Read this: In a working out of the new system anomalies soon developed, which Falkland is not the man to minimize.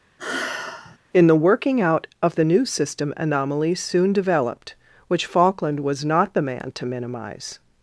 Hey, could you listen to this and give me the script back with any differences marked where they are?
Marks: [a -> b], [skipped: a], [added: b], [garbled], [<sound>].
[sigh] In [a -> the] working out of the new system anomalies soon developed, which Falkland [is -> was] not the man to minimize.